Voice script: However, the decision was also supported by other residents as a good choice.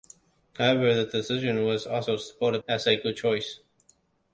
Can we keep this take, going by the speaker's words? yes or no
no